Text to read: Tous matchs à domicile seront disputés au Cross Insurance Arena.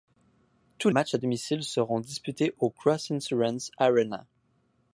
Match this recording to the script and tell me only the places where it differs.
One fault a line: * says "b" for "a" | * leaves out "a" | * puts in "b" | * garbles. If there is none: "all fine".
all fine